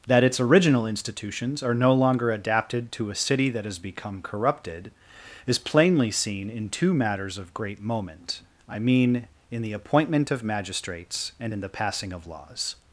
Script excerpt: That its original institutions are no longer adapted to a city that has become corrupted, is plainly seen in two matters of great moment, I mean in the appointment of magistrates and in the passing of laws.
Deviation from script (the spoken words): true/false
false